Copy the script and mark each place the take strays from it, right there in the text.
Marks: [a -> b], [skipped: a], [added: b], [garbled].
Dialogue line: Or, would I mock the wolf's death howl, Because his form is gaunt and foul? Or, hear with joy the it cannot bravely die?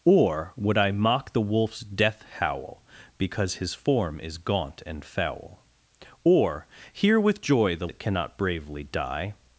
Or, would I mock the wolf's death howl, Because his form is gaunt and foul? Or, hear with joy the it cannot bravely die?